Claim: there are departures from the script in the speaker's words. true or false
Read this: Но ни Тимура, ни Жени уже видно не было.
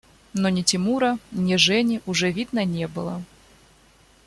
false